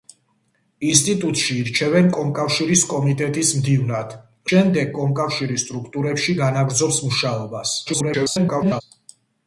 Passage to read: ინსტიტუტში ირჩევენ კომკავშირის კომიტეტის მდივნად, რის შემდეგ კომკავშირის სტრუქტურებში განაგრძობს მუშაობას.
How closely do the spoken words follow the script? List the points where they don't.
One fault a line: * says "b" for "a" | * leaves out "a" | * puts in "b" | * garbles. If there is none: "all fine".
* leaves out "რის"
* garbles